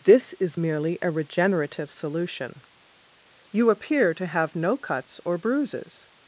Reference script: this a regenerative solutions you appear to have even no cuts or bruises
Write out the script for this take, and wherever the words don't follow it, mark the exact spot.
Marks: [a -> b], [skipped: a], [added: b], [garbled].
this [added: is merely] a regenerative [solutions -> solution] you appear to have [skipped: even] no cuts or bruises